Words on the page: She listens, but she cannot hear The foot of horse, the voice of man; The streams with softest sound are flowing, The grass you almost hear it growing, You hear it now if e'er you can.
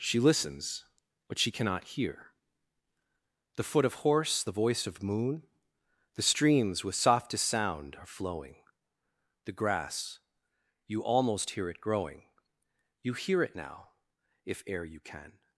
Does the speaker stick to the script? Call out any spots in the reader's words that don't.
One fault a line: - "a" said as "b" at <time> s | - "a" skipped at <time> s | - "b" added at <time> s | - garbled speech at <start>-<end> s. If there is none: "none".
- "man" said as "moon" at 5.0 s